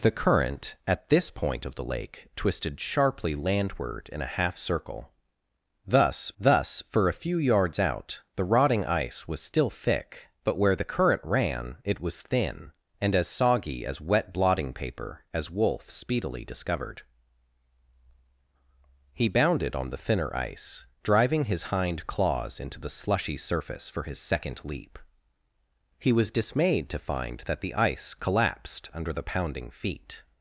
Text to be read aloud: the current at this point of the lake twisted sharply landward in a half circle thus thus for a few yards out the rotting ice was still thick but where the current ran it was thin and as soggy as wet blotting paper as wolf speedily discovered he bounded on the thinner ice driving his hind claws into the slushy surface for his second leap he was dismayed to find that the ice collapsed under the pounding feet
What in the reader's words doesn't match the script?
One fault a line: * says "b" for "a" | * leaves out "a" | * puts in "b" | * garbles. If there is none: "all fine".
all fine